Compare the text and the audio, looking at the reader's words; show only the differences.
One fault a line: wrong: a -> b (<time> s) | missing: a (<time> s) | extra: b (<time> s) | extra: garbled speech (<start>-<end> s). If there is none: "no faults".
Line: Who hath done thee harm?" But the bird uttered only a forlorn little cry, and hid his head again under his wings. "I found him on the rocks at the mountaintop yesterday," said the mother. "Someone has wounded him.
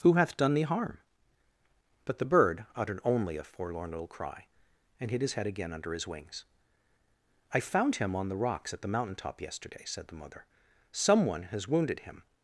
no faults